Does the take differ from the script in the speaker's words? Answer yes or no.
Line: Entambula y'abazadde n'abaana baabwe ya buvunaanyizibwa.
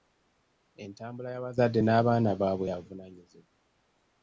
no